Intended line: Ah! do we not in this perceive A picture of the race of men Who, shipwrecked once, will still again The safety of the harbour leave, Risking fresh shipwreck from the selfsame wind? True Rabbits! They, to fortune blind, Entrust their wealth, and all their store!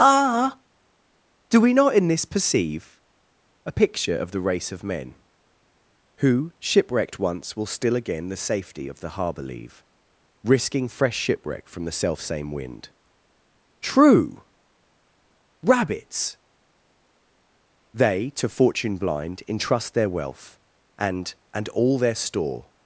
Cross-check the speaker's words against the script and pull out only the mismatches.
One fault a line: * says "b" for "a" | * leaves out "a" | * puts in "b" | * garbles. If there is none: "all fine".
* puts in "and"